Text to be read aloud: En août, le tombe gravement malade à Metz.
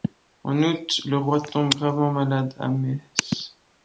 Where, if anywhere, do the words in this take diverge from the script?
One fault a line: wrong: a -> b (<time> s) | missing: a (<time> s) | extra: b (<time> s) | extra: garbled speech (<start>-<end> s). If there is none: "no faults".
extra: roi (1.1 s)